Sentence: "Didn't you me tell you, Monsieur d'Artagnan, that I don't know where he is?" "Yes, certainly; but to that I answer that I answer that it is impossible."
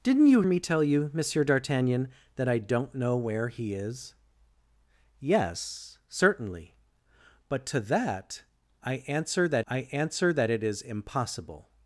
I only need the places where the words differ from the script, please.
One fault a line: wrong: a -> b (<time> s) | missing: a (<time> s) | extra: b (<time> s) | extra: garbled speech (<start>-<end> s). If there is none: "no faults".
no faults